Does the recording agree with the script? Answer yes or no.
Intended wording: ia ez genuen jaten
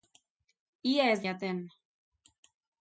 no